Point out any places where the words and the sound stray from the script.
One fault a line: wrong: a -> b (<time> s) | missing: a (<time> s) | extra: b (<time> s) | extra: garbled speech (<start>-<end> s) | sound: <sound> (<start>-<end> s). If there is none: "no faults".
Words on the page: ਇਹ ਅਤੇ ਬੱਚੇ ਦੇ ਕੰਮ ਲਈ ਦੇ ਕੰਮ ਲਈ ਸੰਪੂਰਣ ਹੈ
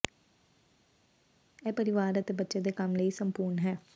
extra: ਪਰਿਵਾਰ (1.7 s)
missing: ਦੇ ਕੰਮ ਲਈ (3.1 s)